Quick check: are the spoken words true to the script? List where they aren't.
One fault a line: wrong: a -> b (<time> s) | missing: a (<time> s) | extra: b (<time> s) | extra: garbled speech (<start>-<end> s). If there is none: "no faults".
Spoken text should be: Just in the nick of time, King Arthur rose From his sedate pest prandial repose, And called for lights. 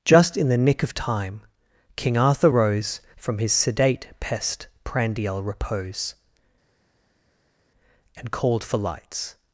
no faults